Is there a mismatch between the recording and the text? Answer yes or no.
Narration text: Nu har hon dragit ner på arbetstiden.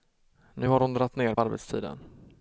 yes